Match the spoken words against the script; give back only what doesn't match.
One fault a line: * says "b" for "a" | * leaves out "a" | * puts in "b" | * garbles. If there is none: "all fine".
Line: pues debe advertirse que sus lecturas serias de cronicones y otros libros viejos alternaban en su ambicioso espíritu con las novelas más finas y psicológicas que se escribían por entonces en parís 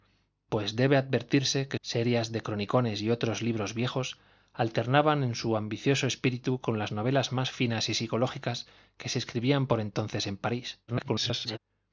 * leaves out "sus lecturas"
* garbles